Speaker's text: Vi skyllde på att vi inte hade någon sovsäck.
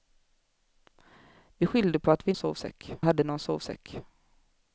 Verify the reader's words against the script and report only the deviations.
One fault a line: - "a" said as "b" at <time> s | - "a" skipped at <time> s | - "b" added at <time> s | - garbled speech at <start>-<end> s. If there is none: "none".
- "inte" said as "sovsäck" at 2.3 s